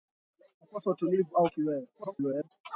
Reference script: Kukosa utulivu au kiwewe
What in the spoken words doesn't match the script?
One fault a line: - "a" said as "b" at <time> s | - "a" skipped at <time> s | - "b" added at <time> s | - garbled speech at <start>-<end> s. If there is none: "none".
- garbled speech at 1.9-2.5 s